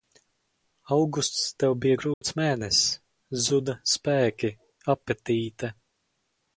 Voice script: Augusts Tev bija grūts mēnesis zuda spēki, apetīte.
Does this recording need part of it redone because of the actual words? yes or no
no